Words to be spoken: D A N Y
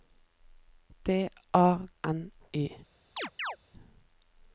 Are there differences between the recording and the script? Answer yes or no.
no